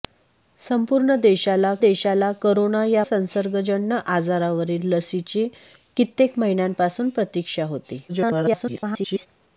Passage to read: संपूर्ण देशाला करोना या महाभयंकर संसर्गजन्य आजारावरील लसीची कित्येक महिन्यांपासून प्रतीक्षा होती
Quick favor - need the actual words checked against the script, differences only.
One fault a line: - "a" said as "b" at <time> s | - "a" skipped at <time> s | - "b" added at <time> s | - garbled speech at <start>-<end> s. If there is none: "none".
- "देशाला" added at 1.8 s
- "महाभयंकर" skipped at 3.0 s
- garbled speech at 8.1-9.3 s